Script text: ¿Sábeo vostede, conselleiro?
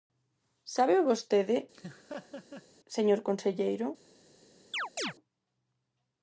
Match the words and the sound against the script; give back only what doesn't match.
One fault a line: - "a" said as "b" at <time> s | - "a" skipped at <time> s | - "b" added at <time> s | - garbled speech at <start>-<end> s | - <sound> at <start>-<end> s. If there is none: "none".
- laugh at 1.7-2.7 s
- "señor" added at 3.0 s
- chirp at 4.7-5.1 s